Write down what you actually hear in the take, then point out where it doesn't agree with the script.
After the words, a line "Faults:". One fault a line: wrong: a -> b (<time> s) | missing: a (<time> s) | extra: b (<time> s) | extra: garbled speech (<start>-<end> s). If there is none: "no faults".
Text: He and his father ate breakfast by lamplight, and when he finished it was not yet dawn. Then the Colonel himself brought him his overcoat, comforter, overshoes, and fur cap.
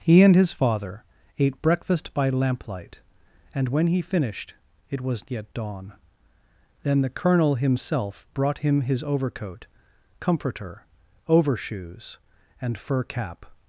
He and his father ate breakfast by lamplight, and when he finished it was yet dawn. Then the Colonel himself brought him his overcoat, comforter, overshoes, and fur cap.
Faults:
missing: not (5.3 s)